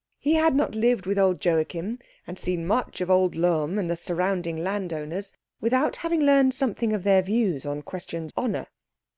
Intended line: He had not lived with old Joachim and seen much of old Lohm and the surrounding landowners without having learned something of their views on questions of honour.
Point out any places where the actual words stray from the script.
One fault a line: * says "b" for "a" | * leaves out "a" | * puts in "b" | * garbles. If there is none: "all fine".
* leaves out "of"